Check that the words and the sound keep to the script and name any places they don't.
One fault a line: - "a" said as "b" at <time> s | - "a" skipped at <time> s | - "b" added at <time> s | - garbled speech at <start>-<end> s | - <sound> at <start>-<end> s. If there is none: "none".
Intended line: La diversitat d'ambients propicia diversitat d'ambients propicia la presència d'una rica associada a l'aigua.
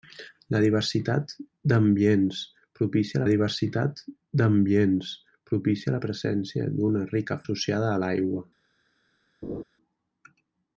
- laugh at 9.4-9.6 s